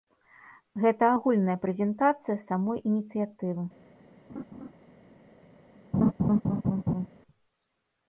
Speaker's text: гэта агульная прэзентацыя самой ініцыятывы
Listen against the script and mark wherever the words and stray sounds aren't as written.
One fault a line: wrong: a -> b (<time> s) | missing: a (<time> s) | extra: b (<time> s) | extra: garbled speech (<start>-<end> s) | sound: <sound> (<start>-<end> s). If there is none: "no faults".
sound: laugh (4.3-4.7 s)
sound: laugh (5.9-7.1 s)